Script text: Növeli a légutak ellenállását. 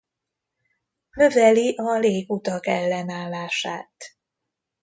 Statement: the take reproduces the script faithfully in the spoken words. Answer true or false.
true